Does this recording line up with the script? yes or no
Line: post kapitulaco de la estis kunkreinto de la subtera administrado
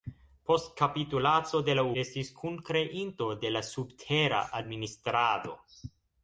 yes